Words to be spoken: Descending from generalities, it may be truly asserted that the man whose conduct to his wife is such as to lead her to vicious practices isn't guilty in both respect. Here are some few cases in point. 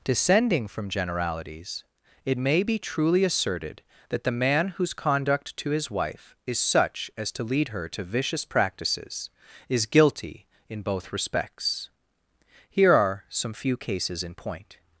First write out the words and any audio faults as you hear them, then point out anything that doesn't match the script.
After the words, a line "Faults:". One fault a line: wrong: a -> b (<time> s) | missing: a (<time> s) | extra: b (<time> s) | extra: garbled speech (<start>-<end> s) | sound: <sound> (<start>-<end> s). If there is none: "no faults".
Descending from generalities, it may be truly asserted that the man whose conduct to his wife is such as to lead her to vicious practices is guilty in both respects. Here are some few cases in point.
Faults:
wrong: isn't -> is (9.7 s)
wrong: respect -> respects (11.1 s)